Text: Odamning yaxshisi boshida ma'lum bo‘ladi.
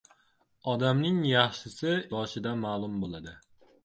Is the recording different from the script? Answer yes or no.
no